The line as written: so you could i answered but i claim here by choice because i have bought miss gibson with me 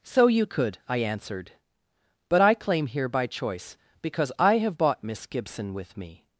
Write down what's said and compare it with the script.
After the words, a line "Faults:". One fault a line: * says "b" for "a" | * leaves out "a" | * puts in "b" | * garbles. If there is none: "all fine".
so you could i answered but i claim here by choice because i have bought miss gibson with me
Faults:
all fine